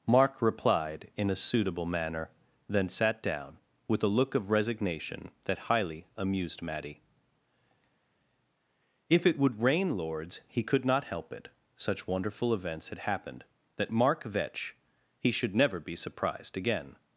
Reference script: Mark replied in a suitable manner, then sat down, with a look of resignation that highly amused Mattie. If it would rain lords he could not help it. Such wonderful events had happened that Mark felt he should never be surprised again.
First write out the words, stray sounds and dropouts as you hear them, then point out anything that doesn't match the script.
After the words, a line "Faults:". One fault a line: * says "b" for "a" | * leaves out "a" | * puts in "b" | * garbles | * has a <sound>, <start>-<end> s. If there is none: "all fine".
Mark replied in a suitable manner, then sat down, with a look of resignation that highly amused Mattie. If it would rain lords he could not help it. Such wonderful events had happened that Mark vetch he should never be surprised again.
Faults:
* says "vetch" for "felt"